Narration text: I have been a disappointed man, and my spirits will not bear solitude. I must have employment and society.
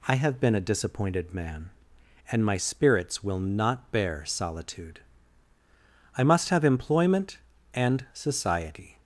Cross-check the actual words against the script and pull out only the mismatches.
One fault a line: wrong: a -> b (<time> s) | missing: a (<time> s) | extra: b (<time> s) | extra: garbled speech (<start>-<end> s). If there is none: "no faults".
no faults